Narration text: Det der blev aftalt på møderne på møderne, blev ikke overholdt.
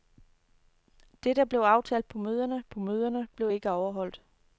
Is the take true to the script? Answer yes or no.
yes